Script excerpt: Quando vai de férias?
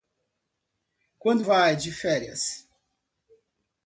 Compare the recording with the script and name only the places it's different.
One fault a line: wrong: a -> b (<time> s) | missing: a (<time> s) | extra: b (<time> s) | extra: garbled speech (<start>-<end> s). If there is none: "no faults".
no faults